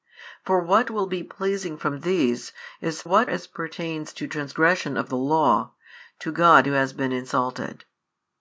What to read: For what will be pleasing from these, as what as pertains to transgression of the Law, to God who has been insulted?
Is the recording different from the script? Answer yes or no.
no